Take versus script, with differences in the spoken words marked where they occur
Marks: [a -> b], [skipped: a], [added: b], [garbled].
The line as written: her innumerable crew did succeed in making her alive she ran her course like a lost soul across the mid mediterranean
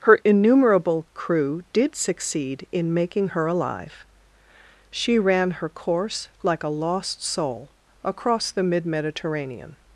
her innumerable crew did succeed in making her alive she ran her course like a lost soul across the mid mediterranean